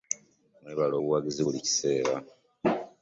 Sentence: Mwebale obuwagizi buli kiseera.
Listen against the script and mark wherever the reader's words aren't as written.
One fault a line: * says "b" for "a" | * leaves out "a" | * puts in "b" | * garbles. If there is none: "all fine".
all fine